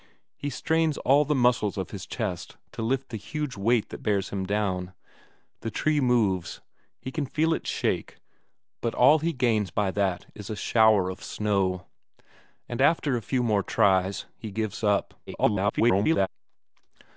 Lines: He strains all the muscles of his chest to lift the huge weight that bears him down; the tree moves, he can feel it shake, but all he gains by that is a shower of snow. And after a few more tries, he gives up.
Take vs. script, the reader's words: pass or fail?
fail